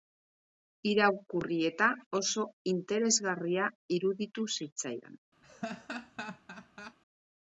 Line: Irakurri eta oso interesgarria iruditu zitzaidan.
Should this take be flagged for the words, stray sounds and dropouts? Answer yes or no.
yes